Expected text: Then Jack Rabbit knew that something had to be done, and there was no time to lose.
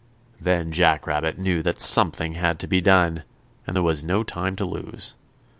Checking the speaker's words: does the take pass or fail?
pass